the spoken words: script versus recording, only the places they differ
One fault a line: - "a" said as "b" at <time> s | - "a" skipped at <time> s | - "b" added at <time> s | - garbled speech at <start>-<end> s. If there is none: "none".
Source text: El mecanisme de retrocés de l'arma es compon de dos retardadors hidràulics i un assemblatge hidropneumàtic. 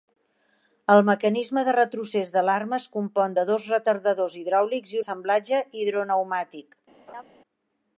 - "un" skipped at 5.0 s